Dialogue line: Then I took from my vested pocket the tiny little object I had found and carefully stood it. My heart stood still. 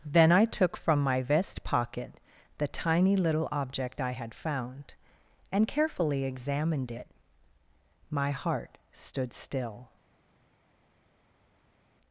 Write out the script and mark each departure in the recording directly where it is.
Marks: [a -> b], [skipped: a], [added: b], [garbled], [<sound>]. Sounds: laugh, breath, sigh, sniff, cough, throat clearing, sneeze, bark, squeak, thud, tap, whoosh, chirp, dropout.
Then I took from my [vested -> vest] pocket the tiny little object I had found and carefully [stood -> examined] it. My heart stood still.